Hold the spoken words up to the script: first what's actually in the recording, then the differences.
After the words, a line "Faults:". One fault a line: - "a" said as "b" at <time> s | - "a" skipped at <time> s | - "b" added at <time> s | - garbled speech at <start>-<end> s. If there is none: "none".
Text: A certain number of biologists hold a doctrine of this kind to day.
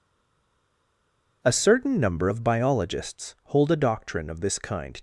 A certain number of biologists hold a doctrine of this kind.
Faults:
- "to day" skipped at 5.0 s